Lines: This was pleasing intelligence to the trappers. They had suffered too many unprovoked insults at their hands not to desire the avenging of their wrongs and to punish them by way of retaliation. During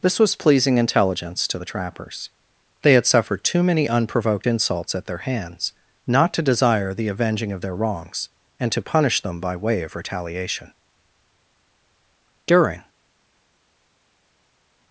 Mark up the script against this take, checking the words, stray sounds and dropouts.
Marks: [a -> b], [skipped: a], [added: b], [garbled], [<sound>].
This was pleasing intelligence to the trappers. They had suffered too many unprovoked insults at their hands not to desire the avenging of their wrongs and to punish them by way of retaliation. During